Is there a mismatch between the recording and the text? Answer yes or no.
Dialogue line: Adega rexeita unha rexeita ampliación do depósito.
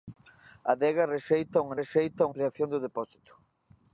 no